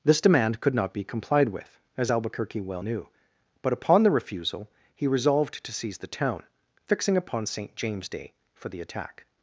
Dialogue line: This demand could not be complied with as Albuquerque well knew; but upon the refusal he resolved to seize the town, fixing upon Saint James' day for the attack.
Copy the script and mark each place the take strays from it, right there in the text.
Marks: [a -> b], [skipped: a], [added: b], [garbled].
This demand could not be complied with as Albuquerque well knew; but upon the refusal he resolved to seize the town, fixing upon Saint James' day for the attack.